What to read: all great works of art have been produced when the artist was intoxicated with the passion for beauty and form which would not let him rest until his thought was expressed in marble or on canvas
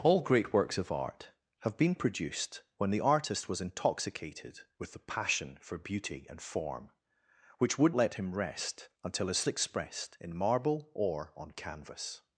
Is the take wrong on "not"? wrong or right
wrong